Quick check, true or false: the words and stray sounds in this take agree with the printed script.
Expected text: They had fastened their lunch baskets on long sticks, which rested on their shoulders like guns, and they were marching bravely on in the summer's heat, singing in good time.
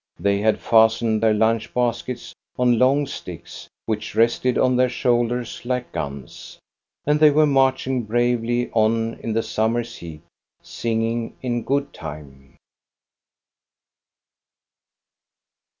true